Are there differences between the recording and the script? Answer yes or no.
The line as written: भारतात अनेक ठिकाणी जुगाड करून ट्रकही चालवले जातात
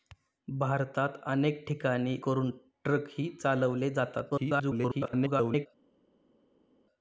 yes